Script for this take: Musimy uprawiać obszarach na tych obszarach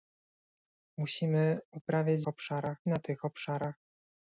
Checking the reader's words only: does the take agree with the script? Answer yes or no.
yes